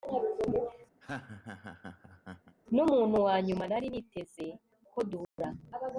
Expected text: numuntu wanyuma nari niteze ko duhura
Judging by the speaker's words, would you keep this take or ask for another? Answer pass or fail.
pass